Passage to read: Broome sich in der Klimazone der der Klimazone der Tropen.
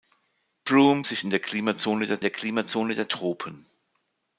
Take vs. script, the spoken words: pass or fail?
pass